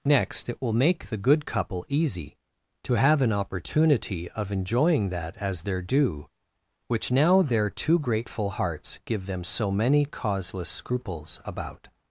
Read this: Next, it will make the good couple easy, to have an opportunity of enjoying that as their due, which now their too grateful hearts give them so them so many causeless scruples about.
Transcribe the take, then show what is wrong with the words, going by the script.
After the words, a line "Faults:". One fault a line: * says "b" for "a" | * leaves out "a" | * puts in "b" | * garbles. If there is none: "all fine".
Next, it will make the good couple easy, to have an opportunity of enjoying that as their due, which now their too grateful hearts give them so many causeless scruples about.
Faults:
* leaves out "them so"